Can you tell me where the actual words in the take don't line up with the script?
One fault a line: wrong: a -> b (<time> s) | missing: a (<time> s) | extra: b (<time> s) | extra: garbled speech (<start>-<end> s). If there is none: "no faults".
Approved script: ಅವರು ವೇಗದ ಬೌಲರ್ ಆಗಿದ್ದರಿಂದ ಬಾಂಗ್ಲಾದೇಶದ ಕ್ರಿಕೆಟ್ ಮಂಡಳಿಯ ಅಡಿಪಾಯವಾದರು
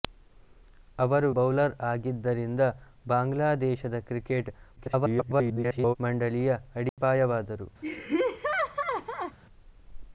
missing: ವೇಗದ (1.3 s)
extra: garbled speech (4.8-6.0 s)